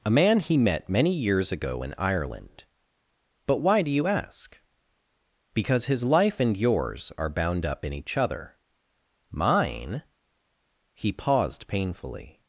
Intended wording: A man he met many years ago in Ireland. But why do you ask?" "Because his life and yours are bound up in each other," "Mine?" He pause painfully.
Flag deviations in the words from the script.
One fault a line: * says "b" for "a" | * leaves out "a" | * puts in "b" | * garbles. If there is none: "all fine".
* says "paused" for "pause"